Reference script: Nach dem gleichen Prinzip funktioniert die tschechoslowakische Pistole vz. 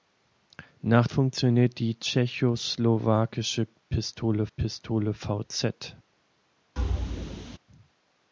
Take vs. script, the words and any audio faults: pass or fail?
fail